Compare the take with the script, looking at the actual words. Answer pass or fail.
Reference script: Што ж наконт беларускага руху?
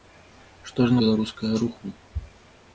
fail